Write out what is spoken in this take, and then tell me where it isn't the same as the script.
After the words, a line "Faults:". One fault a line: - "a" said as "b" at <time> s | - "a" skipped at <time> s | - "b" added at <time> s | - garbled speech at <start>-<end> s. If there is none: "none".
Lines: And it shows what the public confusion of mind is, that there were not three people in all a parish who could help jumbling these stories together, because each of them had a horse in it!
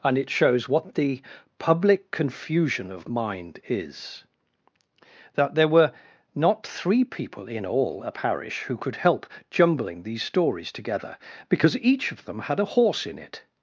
And it shows what the public confusion of mind is, that there were not three people in all a parish who could help jumbling these stories together, because each of them had a horse in it!
Faults:
none